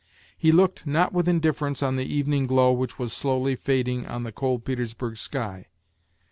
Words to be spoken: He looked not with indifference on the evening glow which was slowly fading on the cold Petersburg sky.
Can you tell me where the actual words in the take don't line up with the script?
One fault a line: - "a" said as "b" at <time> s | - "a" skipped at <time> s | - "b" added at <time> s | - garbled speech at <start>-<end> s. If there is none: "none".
none